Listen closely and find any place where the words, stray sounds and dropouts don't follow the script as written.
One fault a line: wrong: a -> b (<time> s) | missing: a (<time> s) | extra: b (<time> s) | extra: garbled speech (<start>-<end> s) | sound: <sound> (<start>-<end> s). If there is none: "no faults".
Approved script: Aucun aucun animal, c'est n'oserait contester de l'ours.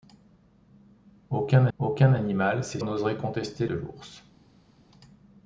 no faults